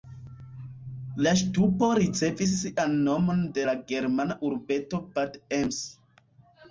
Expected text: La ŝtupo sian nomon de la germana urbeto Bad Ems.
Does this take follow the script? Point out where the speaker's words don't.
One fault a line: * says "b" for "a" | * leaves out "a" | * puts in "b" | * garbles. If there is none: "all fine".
* puts in "ricevis"